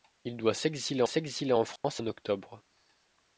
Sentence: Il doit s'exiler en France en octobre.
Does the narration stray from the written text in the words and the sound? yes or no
yes